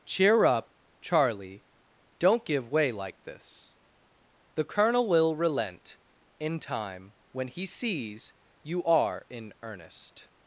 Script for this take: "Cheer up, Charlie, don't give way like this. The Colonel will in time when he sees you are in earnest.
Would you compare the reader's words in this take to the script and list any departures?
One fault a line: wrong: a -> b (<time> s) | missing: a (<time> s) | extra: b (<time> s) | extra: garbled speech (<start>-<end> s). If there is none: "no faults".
extra: relent (5.3 s)